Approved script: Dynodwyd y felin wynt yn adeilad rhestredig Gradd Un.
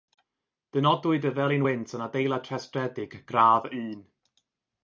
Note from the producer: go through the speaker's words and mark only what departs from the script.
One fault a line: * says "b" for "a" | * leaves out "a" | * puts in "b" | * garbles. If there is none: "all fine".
all fine